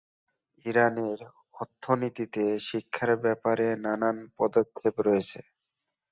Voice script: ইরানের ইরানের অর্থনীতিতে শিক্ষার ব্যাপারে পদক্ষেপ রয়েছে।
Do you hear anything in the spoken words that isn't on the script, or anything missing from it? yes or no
yes